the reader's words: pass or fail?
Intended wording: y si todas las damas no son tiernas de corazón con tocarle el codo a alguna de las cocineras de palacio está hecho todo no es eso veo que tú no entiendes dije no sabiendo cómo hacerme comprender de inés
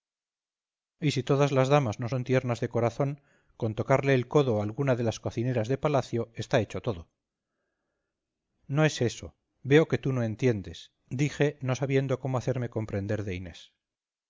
pass